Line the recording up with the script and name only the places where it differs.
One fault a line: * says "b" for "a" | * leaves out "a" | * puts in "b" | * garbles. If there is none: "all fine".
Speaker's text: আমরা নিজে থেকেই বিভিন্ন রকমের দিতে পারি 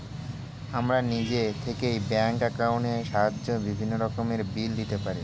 * puts in "ব্যাঙ্ক অ্যাকাউন্টের সাহায্যে"
* puts in "বিল"